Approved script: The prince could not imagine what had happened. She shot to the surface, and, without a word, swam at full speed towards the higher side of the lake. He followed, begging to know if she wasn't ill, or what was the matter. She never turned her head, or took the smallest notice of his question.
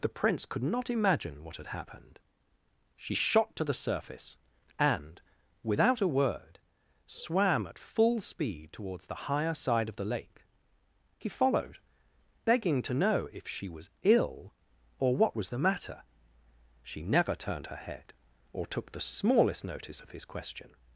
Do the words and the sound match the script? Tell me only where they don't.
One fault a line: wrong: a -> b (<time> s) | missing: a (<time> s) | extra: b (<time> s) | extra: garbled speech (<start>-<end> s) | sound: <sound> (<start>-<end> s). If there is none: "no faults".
wrong: wasn't -> was (13.7 s)